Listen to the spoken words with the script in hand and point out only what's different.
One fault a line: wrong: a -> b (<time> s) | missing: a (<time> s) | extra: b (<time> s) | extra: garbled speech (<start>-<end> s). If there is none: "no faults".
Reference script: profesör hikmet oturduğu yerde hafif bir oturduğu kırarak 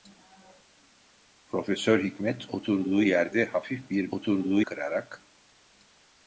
no faults